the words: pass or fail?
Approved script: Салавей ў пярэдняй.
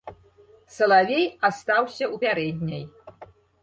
fail